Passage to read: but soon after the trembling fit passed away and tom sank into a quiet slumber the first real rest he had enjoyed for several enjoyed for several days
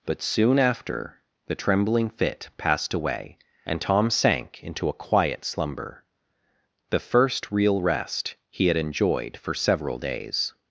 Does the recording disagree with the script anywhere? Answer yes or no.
yes